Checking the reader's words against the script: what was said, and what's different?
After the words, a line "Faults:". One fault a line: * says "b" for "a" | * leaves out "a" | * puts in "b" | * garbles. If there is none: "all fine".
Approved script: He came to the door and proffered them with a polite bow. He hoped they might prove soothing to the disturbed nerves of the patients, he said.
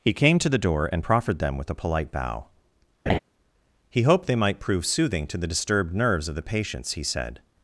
He came to the door and proffered them with a polite bow. He hoped they might prove soothing to the disturbed nerves of the patients, he said.
Faults:
all fine